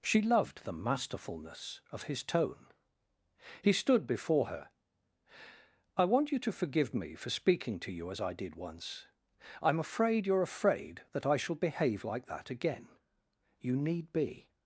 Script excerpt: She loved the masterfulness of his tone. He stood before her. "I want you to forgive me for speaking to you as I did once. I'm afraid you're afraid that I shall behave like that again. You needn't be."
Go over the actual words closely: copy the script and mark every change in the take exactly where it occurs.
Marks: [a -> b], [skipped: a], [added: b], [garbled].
She loved the masterfulness of his tone. He stood before her. "I want you to forgive me for speaking to you as I did once. I'm afraid you're afraid that I shall behave like that again. You [needn't -> need] be."